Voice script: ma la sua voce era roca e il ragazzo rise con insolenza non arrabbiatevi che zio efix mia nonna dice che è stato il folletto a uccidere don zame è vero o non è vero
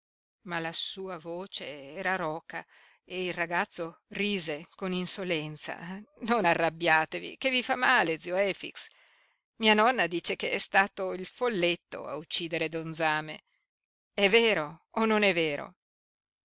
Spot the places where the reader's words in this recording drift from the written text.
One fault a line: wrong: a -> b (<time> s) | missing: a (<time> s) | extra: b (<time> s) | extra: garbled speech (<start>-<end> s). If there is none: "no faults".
extra: vi fa male (7.5 s)